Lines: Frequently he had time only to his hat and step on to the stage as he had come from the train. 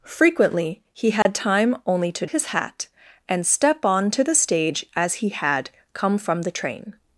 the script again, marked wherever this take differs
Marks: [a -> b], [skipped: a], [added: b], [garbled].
Frequently he had time only to his hat and step on to the stage as he had come from the train.